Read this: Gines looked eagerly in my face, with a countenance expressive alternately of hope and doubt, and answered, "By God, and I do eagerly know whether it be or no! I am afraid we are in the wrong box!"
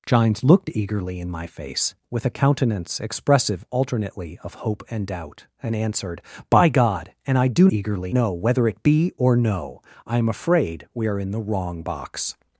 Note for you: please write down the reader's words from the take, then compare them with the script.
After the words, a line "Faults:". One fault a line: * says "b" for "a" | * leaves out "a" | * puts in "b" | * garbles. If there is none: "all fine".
Gines looked eagerly in my face, with a countenance expressive alternately of hope and doubt, and answered, "By God, and I do eagerly know whether it be or no! I am afraid we are in the wrong box!"
Faults:
all fine